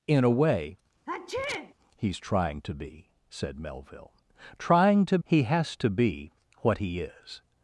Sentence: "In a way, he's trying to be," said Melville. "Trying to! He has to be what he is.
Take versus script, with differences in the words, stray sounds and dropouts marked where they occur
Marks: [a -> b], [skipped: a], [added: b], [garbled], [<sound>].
"In a way, [sneeze] he's trying to be," said Melville. "Trying to! He has to be what he is.